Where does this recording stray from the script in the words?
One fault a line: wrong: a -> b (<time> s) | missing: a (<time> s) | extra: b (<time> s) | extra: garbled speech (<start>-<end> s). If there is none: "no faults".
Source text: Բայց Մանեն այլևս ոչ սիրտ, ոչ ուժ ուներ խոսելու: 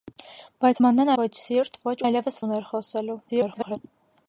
missing: այլևս (1.1 s)
wrong: ուժ -> այլևս (2.0 s)
extra: garbled speech (3.3-3.8 s)